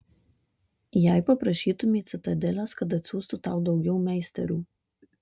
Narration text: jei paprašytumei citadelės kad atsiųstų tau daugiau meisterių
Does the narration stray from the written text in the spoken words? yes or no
no